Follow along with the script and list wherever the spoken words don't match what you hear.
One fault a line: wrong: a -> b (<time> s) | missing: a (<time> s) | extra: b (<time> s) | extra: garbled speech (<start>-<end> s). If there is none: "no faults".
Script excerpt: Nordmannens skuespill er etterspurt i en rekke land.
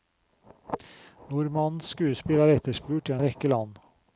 missing: en (3.1 s)